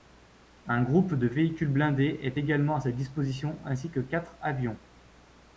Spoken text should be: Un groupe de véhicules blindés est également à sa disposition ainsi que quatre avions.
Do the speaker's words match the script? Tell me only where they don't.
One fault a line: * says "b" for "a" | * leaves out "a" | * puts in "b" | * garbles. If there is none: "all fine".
all fine